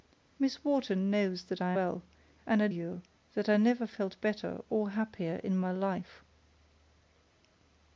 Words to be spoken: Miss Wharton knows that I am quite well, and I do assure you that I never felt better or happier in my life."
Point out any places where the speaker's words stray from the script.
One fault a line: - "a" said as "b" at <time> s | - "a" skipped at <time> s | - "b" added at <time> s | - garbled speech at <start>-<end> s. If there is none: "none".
- "am quite" skipped at 1.7 s
- "do assure" skipped at 2.7 s